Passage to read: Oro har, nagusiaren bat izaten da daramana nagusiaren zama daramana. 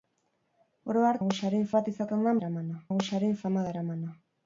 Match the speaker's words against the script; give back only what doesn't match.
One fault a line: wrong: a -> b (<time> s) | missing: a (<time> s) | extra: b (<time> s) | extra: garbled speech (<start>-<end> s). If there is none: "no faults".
no faults